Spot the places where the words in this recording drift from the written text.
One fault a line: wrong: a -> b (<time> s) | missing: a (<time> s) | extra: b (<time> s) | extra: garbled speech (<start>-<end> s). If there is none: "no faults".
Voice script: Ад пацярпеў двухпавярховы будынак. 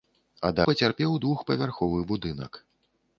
no faults